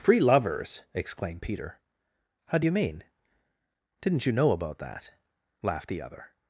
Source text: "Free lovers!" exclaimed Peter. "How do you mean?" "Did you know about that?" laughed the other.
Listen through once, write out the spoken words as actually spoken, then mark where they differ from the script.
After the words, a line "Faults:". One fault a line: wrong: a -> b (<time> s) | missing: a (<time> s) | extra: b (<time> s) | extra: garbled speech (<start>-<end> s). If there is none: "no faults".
"Free lovers!" exclaimed Peter. "How do you mean?" "Didn't you know about that?" laughed the other.
Faults:
wrong: Did -> Didn't (4.0 s)